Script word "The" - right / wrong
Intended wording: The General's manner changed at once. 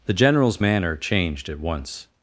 right